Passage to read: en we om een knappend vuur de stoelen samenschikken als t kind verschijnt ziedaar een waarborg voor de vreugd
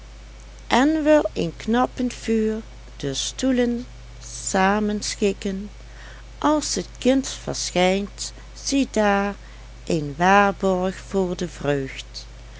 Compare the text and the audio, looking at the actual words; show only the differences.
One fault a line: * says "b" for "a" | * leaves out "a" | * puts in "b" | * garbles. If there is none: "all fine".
* leaves out "om"